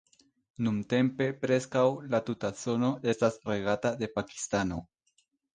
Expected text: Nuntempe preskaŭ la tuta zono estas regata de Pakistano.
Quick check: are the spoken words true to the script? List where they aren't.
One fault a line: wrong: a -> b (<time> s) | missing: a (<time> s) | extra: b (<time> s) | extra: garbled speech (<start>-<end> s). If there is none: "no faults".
no faults